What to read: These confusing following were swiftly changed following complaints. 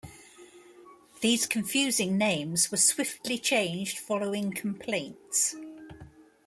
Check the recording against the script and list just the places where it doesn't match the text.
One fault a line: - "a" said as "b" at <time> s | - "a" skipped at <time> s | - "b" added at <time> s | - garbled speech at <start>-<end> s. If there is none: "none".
- "following" said as "names" at 2.2 s